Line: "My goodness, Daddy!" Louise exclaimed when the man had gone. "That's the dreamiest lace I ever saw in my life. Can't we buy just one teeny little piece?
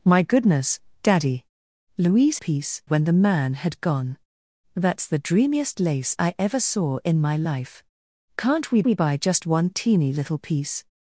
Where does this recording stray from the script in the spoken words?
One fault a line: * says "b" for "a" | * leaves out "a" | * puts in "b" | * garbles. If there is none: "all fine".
* says "piece" for "exclaimed"
* puts in "we"